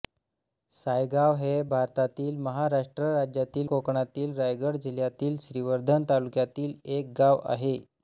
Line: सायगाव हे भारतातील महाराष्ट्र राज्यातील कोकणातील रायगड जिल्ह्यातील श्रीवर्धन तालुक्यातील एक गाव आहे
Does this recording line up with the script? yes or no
yes